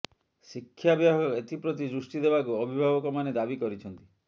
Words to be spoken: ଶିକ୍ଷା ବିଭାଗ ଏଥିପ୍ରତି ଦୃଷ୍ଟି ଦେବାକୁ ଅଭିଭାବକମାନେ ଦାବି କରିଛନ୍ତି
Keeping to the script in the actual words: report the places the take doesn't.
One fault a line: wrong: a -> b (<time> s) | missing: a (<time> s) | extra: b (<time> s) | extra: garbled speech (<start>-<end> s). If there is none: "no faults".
no faults